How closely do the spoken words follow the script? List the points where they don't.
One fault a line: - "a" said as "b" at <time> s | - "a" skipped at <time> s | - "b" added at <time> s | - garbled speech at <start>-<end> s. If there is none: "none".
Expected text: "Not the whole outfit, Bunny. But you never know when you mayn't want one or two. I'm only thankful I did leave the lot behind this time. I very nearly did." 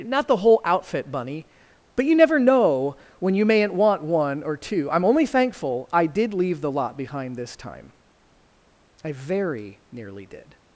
none